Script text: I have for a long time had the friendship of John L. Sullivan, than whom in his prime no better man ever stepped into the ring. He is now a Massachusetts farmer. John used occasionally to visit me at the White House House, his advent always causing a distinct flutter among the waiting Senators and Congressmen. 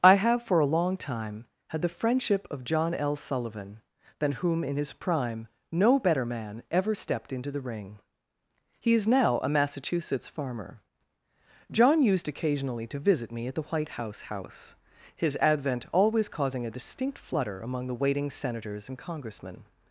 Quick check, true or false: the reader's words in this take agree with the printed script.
true